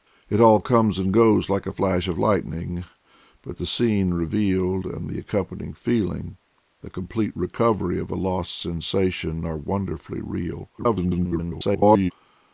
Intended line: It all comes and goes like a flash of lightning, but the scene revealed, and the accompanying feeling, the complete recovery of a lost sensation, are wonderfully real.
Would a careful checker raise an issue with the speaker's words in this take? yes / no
yes